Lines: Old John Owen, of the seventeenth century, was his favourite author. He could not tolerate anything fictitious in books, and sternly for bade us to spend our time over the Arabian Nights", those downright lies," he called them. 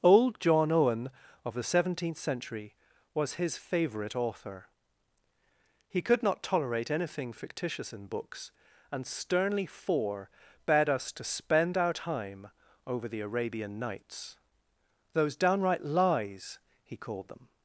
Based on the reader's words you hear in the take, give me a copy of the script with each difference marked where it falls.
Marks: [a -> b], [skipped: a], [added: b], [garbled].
Old John Owen, of the seventeenth century, was his favourite author. He could not tolerate anything fictitious in books, and sternly for bade us to spend our time over the Arabian Nights", those downright lies," he called them.